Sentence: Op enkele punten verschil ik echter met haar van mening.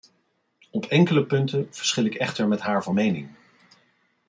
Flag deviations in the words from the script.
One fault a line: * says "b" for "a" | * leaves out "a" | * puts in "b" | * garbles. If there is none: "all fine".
all fine